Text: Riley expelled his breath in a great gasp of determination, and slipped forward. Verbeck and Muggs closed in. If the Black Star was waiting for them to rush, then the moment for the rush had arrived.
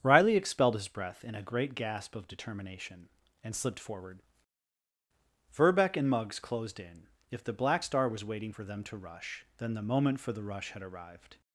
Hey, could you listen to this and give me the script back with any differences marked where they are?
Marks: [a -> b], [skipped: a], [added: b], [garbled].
Riley expelled his breath in a great gasp of determination, and slipped forward. Verbeck and Muggs closed in. If the Black Star was waiting for them to rush, then the moment for the rush had arrived.